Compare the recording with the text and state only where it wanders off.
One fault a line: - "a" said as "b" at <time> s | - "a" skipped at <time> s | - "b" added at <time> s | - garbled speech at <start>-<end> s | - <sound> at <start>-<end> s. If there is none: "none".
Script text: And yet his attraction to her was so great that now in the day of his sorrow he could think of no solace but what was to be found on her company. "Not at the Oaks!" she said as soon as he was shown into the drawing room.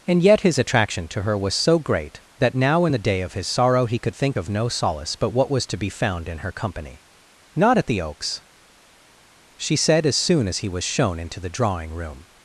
- "on" said as "in" at 6.3 s